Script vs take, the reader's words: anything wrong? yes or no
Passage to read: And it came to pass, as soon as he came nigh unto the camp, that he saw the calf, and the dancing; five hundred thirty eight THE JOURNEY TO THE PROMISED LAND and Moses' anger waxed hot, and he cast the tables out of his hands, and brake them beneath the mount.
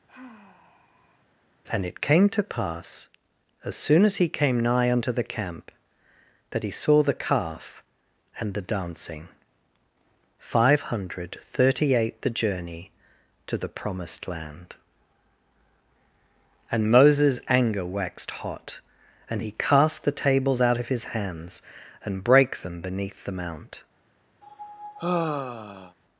no